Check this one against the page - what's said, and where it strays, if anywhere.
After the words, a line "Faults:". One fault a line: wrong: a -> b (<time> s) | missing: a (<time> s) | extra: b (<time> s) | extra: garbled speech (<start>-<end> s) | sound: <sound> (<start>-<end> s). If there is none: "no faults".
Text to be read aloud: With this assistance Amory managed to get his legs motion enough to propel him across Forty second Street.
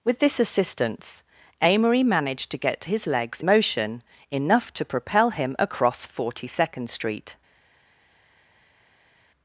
With this assistance Amory managed to get his legs motion enough to propel him across Forty second Street.
Faults:
no faults